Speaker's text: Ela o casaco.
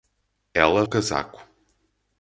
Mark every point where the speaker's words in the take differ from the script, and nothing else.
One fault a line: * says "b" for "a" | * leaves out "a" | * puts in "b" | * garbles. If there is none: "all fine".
all fine